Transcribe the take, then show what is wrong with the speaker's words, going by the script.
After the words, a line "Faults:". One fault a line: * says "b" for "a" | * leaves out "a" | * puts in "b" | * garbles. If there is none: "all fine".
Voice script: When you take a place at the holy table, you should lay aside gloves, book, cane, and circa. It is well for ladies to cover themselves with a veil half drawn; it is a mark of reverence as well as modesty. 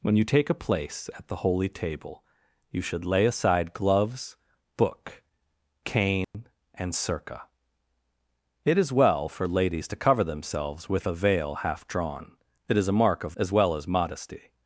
When you take a place at the holy table, you should lay aside gloves, book, cane, and circa. It is well for ladies to cover themselves with a veil half drawn; it is a mark of as well as modesty.
Faults:
* leaves out "reverence"